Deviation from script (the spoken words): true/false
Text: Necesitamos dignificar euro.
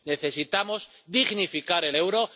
true